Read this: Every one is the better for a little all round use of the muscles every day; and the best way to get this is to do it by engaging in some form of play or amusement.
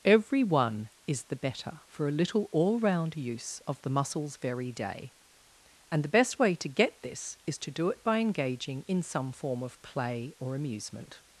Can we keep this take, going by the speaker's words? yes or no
no